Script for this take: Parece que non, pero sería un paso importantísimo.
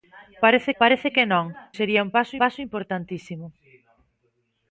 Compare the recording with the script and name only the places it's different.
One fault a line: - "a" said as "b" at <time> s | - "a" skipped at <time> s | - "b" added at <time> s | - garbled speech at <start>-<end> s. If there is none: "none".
- "parece" added at 0.8 s
- "pero" skipped at 1.5 s
- "paso" added at 2.4 s